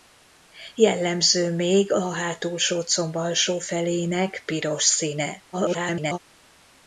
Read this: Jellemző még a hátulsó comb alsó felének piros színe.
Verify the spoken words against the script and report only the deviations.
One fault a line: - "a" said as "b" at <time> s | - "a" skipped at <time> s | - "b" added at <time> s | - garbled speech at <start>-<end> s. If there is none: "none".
- garbled speech at 5.5-6.2 s